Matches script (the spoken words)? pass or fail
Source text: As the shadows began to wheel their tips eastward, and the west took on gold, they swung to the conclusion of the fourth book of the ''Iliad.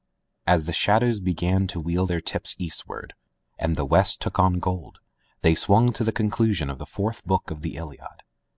pass